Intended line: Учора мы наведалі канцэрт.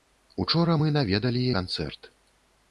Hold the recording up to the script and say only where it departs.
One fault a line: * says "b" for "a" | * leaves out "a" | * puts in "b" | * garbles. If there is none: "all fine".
all fine